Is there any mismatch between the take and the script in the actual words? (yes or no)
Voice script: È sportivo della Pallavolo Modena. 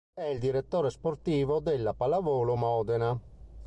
yes